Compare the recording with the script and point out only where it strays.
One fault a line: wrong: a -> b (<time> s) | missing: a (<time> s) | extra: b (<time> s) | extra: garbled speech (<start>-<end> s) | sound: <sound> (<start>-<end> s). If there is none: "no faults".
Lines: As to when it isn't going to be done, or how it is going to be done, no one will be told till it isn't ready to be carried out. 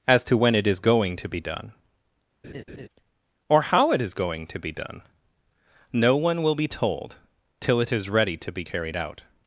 wrong: isn't -> is (0.7 s)
sound: laugh (2.4-2.9 s)
wrong: isn't -> is (7.9 s)